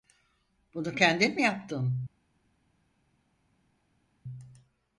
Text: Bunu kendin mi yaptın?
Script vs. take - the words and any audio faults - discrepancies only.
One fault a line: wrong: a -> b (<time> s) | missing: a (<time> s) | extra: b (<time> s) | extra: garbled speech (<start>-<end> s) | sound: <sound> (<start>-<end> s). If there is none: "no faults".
no faults